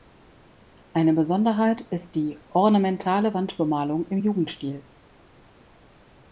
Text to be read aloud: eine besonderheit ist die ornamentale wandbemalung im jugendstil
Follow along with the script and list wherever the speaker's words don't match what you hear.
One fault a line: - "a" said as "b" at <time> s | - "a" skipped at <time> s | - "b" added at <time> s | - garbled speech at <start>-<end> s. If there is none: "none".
none